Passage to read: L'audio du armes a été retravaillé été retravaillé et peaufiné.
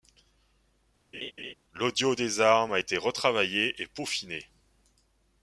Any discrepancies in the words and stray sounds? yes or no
yes